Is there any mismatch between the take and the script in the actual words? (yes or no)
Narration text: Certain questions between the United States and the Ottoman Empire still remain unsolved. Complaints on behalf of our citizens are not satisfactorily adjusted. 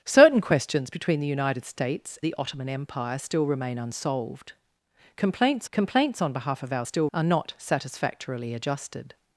yes